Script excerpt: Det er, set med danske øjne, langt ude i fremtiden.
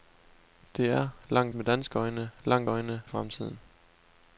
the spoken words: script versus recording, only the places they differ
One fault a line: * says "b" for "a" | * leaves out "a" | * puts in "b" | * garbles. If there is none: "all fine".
* says "langt" for "set"
* says "øjne" for "ude"